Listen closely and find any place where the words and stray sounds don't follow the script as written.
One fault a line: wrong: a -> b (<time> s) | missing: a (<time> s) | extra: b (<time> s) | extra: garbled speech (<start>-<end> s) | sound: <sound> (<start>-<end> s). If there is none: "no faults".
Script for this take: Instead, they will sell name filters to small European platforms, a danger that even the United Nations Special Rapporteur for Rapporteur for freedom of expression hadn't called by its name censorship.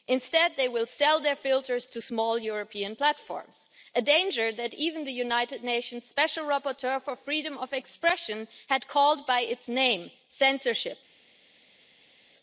wrong: name -> their (1.2 s)
missing: Rapporteur for (7.2 s)
wrong: hadn't -> had (8.7 s)